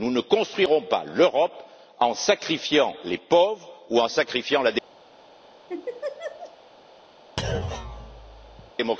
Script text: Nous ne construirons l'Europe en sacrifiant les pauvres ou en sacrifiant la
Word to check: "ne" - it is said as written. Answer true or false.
true